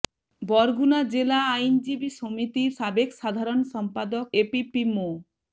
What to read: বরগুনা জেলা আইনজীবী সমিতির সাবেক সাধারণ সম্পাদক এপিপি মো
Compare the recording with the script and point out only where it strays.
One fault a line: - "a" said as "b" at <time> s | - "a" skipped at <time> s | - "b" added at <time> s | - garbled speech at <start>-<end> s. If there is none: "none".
none